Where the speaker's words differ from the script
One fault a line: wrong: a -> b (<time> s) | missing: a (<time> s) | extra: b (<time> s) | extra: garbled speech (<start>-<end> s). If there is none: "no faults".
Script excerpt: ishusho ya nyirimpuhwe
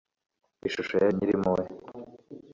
no faults